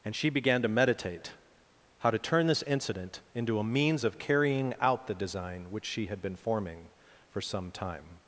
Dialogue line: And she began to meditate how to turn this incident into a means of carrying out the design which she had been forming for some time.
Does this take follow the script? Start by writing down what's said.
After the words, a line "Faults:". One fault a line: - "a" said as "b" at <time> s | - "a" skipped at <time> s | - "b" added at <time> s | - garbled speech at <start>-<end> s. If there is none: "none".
And she began to meditate how to turn this incident into a means of carrying out the design which she had been forming for some time.
Faults:
none